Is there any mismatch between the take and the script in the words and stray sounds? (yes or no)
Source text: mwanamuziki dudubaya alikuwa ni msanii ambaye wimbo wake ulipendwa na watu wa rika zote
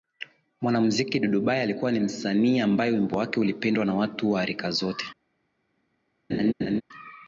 yes